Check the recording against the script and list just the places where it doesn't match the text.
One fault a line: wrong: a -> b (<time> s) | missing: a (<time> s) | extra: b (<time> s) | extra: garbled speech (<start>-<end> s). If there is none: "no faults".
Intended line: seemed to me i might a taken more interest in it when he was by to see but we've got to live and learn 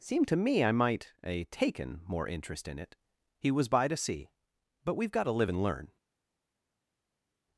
missing: when (3.0 s)